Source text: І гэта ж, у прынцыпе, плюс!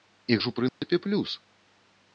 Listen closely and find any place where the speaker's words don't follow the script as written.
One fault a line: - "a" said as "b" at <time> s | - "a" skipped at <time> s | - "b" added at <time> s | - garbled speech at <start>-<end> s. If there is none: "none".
- "гэта" skipped at 0.4 s